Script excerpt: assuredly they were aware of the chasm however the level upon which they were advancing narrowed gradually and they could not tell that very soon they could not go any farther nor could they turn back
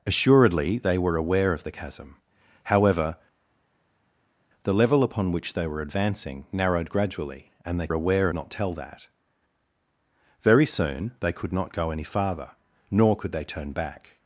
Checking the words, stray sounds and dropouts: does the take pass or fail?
fail